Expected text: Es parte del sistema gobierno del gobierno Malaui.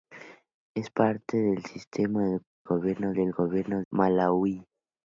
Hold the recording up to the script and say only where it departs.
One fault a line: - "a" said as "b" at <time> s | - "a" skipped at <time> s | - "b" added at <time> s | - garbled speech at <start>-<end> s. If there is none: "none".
none